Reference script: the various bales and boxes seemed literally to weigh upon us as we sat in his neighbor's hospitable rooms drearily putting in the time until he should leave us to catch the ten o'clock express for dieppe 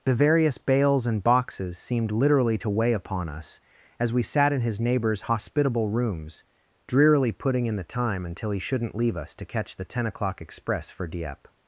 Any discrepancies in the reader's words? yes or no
yes